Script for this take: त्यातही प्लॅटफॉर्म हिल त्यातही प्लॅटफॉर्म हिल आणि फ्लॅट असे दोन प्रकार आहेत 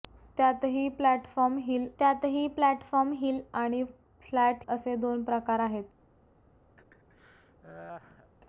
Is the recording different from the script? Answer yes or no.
no